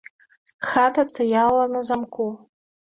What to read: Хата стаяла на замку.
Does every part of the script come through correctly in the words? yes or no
yes